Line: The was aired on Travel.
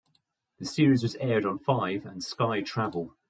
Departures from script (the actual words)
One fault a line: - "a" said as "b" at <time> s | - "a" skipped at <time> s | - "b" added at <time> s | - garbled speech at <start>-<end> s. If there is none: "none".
- "series" added at 0.7 s
- "Five and Sky" added at 1.6 s